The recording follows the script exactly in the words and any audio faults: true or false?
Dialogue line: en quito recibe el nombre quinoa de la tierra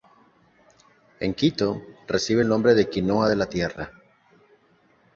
false